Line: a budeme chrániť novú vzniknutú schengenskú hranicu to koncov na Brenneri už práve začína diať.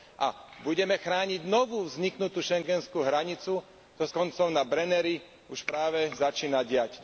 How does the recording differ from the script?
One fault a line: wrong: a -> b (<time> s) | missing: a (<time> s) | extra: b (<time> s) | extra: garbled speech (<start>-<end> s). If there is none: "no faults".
no faults